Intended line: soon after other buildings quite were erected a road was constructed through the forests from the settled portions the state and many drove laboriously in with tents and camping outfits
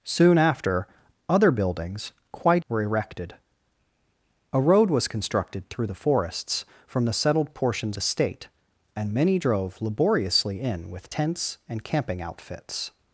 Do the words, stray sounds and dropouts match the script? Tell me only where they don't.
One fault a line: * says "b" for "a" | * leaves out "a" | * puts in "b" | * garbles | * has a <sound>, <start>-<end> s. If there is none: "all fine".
all fine